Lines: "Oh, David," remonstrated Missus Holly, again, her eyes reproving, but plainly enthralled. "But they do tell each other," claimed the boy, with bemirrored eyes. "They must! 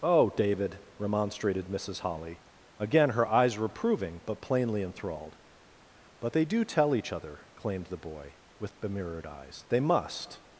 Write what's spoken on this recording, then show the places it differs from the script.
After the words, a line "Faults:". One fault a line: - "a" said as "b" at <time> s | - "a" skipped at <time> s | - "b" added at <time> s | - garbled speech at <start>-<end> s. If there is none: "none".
"Oh, David," remonstrated Missus Holly, again, her eyes reproving, but plainly enthralled. "But they do tell each other," claimed the boy, with bemirrored eyes. "They must!
Faults:
none